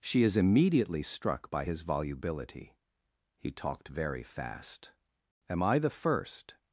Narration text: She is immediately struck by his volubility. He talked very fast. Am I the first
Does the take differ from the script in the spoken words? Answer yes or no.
no